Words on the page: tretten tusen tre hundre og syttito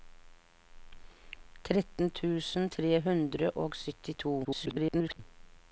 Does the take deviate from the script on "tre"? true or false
false